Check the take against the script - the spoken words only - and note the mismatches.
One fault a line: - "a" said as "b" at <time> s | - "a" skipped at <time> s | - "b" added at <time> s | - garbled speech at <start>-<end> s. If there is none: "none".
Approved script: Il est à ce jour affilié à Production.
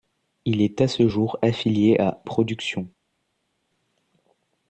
none